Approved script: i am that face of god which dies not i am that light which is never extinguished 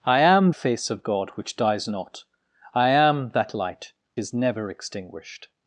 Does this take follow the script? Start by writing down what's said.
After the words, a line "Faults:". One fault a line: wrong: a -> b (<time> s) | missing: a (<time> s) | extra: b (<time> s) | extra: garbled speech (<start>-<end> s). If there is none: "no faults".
i am face of god which dies not i am that light is never extinguished
Faults:
missing: that (0.5 s)
missing: which (3.9 s)